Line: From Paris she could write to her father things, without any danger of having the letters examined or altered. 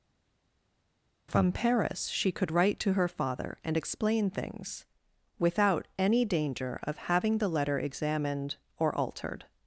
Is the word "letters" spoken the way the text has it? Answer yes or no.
no